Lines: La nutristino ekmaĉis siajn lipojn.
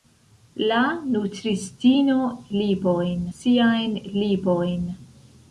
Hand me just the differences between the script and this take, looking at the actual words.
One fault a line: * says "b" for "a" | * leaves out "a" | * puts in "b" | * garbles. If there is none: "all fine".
* says "lipojn" for "ekmaĉis"